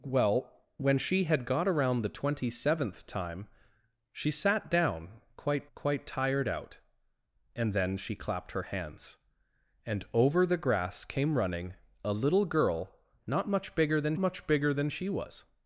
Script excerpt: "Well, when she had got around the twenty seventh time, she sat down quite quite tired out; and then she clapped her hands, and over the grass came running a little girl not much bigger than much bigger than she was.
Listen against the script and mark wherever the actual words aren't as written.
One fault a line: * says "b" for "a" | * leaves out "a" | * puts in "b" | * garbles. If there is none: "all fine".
all fine